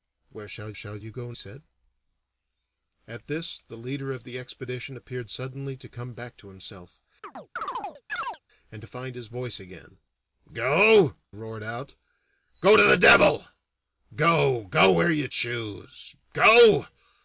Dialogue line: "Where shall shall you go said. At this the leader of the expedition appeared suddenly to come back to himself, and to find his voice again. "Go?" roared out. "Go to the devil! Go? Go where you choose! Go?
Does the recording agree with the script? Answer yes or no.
yes